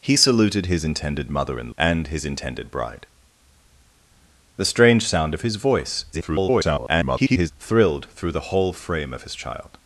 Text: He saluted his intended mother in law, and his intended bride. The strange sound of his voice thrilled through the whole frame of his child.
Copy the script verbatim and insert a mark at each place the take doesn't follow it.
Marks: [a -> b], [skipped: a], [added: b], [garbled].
He saluted his intended mother in [skipped: law,] and his intended bride. The strange sound of his voice [garbled] thrilled through the whole frame of his child.